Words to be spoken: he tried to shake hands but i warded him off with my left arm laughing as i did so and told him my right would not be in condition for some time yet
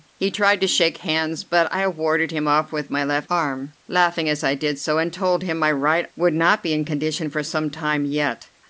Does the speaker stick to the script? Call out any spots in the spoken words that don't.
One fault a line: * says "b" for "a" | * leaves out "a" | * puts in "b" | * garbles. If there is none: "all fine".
all fine